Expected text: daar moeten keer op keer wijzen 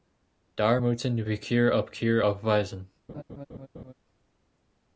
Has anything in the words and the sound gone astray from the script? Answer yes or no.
yes